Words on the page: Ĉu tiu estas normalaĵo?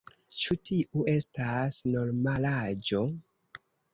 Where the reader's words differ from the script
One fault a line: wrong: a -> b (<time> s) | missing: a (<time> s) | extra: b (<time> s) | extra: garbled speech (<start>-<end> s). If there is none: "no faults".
no faults